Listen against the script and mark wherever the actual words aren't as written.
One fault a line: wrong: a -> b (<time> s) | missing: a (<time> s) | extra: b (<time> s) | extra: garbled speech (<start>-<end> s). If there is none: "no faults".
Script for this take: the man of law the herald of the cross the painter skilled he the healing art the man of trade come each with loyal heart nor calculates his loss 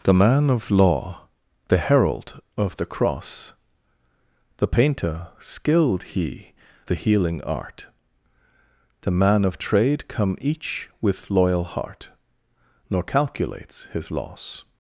no faults